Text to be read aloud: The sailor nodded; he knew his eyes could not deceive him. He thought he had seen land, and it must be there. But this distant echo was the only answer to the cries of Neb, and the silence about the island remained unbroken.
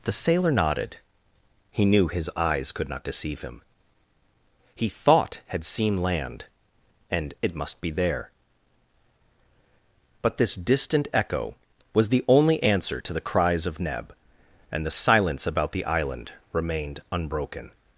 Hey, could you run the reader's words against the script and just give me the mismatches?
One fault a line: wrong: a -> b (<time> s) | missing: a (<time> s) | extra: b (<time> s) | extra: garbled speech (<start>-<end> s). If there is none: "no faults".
missing: he (5.4 s)